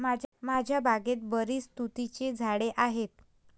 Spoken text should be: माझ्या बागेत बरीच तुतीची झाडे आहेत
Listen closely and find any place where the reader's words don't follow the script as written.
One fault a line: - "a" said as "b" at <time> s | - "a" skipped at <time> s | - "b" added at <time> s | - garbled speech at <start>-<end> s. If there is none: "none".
none